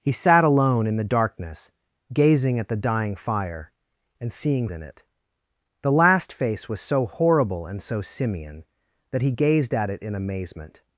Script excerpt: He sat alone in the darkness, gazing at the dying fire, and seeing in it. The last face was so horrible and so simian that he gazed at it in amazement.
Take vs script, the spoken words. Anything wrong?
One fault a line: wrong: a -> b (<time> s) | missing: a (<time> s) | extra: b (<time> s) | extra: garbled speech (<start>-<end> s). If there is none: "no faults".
no faults